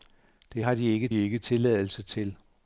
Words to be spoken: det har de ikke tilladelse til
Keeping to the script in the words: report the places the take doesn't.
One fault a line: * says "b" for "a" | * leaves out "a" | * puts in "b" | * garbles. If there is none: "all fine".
* puts in "ikke"